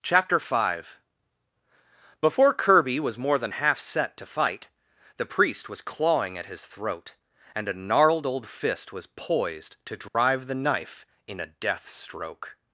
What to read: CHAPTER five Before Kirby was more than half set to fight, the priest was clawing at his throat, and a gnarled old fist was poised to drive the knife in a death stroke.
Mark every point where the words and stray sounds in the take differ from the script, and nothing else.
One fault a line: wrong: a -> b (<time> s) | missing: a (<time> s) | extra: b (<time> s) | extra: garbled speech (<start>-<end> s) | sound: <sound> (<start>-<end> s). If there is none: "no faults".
sound: dropout (10.1-10.1 s)